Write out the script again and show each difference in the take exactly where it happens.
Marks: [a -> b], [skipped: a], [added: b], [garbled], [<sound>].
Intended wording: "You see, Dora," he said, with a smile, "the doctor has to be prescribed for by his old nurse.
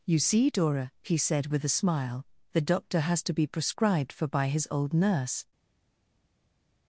"You see, Dora," he said, with a smile, "the doctor has to be prescribed for by his old nurse.